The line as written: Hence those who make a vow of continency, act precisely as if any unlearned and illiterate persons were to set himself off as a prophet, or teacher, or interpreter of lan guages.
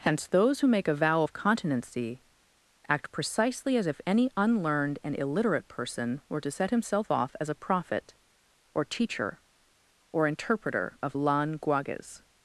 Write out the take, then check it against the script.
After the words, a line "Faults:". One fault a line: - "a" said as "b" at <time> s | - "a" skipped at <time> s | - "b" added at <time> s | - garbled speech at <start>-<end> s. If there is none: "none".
Hence those who make a vow of continency, act precisely as if any unlearned and illiterate person were to set himself off as a prophet, or teacher, or interpreter of lan guages.
Faults:
- "persons" said as "person" at 5.7 s